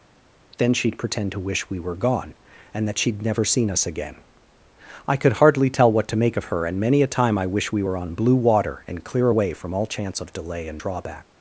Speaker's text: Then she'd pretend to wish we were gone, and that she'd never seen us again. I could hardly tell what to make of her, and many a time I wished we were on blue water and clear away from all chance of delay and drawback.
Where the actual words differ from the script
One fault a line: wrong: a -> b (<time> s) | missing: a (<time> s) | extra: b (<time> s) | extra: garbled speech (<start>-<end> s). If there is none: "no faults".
wrong: wished -> wish (7.5 s)